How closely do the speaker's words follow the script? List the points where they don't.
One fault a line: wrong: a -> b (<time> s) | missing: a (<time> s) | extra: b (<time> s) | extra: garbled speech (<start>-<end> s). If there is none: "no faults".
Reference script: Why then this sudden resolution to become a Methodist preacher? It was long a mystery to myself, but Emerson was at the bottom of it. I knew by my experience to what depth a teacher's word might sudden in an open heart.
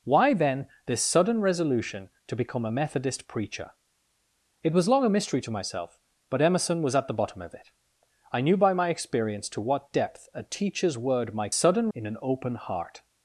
no faults